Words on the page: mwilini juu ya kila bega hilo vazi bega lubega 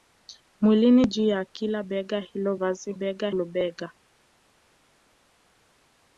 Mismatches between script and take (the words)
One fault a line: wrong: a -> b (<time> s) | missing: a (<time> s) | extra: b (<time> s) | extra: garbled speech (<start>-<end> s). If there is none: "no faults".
no faults